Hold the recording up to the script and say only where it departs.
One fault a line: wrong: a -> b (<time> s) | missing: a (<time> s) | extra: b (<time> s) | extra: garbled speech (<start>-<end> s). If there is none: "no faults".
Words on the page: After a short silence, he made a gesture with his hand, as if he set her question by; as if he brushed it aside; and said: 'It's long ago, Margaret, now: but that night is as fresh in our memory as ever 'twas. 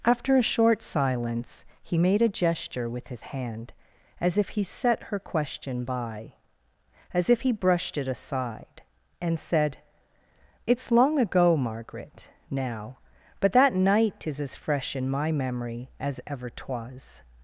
wrong: our -> my (15.1 s)